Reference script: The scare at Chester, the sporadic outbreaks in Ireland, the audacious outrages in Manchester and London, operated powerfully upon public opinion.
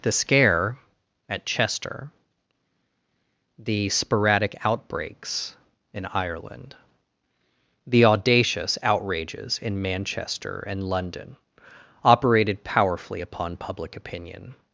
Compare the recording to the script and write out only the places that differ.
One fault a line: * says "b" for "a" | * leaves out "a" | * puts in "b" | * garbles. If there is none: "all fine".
all fine